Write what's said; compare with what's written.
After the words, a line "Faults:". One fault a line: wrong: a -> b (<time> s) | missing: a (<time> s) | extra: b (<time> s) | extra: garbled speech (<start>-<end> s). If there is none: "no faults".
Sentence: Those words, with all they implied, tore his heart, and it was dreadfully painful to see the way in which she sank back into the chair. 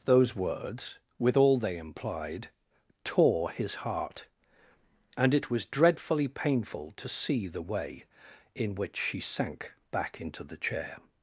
Those words, with all they implied, tore his heart, and it was dreadfully painful to see the way in which she sank back into the chair.
Faults:
no faults